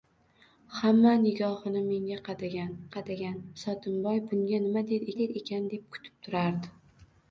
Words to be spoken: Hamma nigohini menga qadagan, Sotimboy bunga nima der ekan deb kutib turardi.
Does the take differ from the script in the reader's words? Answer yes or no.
yes